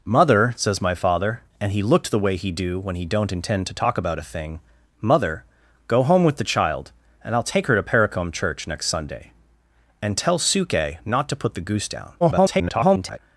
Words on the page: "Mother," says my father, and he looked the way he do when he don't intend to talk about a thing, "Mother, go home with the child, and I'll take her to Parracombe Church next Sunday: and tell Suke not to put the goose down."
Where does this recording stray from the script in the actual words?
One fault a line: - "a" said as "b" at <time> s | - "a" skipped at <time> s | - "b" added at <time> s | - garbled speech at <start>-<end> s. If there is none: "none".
- garbled speech at 12.2-13.2 s